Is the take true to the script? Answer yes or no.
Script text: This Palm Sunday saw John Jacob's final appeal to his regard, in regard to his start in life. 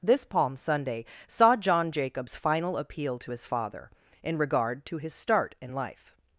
no